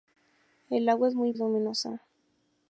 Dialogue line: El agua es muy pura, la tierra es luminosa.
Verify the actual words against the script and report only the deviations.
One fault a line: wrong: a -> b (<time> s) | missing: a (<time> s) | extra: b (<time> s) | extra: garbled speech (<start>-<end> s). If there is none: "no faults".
missing: pura la tierra (1.3 s)